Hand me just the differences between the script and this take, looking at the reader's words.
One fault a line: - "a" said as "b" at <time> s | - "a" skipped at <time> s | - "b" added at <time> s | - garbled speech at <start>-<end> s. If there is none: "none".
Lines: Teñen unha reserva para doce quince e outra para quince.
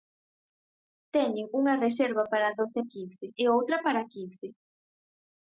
none